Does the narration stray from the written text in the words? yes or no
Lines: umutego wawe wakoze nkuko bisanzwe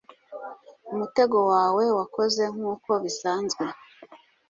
no